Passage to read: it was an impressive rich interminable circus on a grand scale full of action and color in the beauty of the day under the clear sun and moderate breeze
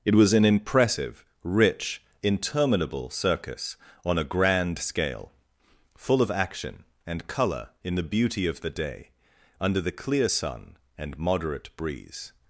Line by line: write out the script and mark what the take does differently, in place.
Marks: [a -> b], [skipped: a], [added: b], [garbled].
it was an impressive rich interminable circus on a grand scale full of action and color in the beauty of the day under the clear sun and moderate breeze